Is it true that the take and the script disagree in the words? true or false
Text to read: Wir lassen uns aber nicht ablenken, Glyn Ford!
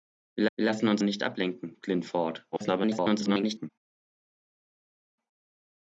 true